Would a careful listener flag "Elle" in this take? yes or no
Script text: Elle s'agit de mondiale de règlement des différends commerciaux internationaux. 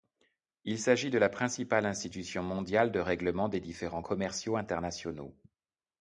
yes